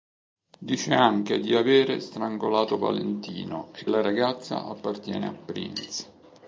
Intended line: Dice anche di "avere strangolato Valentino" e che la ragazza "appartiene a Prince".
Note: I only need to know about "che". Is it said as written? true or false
false